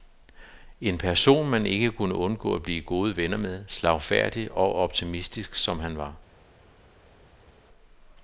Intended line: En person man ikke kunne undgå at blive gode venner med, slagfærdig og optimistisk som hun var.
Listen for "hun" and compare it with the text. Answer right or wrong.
wrong